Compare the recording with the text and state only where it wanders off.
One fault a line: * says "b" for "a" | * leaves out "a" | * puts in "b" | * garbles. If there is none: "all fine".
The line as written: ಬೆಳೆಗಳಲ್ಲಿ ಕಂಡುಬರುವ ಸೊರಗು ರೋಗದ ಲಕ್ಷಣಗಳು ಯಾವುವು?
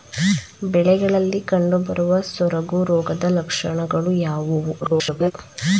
* garbles